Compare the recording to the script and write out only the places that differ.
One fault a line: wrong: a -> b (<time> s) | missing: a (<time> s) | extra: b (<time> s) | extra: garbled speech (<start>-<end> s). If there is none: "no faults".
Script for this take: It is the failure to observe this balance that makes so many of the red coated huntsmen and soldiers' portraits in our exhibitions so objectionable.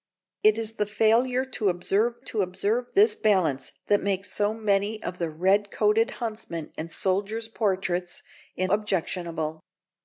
extra: to observe (2.2 s)
missing: our exhibitions so (8.7 s)